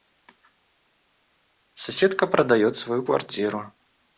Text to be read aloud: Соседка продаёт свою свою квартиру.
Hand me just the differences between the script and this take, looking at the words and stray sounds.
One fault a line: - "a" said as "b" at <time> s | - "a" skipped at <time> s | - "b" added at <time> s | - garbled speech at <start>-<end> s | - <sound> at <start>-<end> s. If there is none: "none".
- "свою" skipped at 3.0 s